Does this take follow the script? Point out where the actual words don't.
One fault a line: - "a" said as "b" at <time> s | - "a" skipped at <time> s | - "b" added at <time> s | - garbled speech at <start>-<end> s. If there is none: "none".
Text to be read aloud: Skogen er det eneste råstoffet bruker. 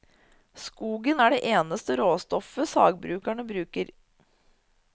- "sagbrukene" added at 2.7 s